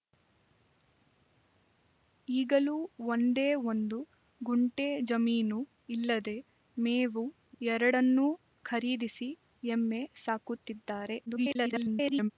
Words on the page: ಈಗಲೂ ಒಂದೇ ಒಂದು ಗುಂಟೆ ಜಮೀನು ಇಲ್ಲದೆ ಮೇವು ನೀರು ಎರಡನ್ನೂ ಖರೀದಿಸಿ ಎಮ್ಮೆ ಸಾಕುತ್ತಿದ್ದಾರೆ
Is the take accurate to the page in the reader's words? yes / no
no